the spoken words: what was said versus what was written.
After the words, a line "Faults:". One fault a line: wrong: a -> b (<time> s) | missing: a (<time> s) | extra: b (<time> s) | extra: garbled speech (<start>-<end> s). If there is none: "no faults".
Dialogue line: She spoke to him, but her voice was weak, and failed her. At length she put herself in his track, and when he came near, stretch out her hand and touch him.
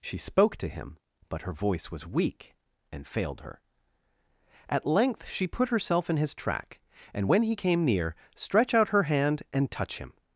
She spoke to him, but her voice was weak, and failed her. At length she put herself in his track, and when he came near, stretch out her hand and touch him.
Faults:
no faults